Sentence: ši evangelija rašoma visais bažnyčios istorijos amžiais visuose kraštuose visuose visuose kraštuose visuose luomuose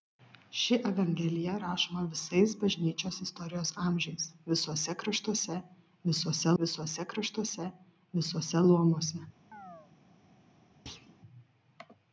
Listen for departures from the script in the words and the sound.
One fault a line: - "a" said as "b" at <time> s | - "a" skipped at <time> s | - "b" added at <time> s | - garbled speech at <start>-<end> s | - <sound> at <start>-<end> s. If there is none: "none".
- chirp at 9.5-9.9 s
- thud at 10.9-11.2 s